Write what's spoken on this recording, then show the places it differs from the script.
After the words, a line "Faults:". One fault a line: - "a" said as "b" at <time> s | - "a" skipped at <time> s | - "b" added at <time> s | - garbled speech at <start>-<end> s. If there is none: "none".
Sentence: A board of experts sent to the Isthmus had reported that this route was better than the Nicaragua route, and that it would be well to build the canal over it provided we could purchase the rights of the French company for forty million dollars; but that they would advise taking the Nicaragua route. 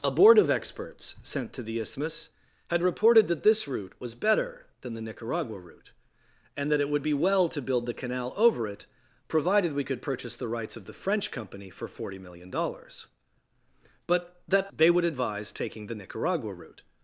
A board of experts sent to the Isthmus had reported that this route was better than the Nicaragua route, and that it would be well to build the canal over it provided we could purchase the rights of the French company for forty million dollars; but that they would advise taking the Nicaragua route.
Faults:
none